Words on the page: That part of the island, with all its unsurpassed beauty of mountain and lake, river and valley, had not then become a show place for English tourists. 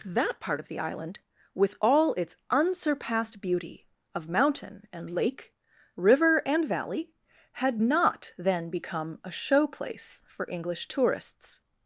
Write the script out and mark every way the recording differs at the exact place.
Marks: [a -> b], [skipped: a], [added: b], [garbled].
That part of the island, with all its unsurpassed beauty of mountain and lake, river and valley, had not then become a show place for English tourists.